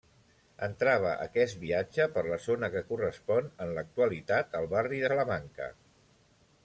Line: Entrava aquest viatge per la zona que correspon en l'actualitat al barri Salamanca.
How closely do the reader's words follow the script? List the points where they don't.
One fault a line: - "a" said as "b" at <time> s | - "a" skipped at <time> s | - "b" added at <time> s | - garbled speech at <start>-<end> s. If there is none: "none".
none